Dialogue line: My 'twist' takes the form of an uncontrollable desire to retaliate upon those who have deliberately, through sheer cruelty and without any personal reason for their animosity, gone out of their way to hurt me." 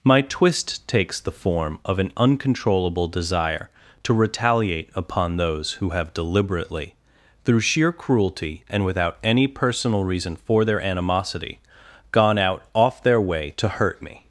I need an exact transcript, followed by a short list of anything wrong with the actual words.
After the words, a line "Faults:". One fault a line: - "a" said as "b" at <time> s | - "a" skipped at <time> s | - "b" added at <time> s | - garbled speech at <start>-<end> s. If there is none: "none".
My 'twist' takes the form of an uncontrollable desire to retaliate upon those who have deliberately, through sheer cruelty and without any personal reason for their animosity, gone out off their way to hurt me."
Faults:
- "of" said as "off" at 12.7 s